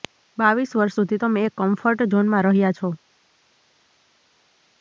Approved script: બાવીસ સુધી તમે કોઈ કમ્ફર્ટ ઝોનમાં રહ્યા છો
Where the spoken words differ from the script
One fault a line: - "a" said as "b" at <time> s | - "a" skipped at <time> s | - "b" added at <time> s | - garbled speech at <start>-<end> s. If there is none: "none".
- "વર્ષ" added at 0.8 s
- "કોઈ" said as "એક" at 1.4 s